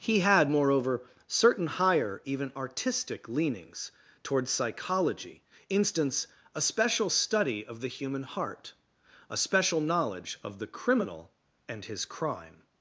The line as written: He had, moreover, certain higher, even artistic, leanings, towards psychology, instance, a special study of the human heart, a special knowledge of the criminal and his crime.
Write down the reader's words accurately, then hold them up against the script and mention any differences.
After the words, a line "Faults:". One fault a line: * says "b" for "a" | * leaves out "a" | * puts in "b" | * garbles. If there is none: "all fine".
He had, moreover, certain higher, even artistic, leanings, towards psychology, instance, a special study of the human heart, a special knowledge of the criminal and his crime.
Faults:
all fine